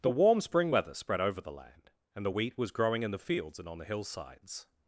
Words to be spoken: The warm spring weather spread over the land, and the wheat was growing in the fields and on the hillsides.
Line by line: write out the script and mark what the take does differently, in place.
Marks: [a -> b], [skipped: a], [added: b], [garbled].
The warm spring weather spread over the land, and the wheat was growing in the fields and on the hillsides.